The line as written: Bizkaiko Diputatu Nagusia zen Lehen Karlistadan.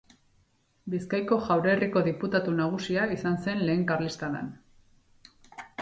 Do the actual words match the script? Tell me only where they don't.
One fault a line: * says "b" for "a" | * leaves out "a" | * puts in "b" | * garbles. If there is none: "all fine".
* puts in "Jaurerriko"
* puts in "izan"